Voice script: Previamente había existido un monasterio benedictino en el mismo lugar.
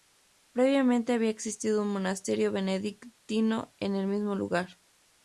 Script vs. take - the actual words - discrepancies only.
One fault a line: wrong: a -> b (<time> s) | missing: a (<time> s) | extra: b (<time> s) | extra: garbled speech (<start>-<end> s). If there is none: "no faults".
no faults